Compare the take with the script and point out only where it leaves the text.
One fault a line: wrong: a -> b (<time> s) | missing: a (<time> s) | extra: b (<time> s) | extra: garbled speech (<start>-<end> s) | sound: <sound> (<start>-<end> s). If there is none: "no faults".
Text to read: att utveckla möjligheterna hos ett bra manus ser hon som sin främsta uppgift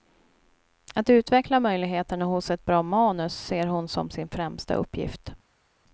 no faults